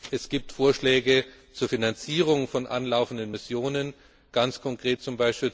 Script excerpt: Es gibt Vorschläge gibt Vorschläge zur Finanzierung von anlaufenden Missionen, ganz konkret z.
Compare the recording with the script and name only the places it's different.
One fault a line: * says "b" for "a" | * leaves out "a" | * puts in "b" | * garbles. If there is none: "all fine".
* leaves out "gibt Vorschläge"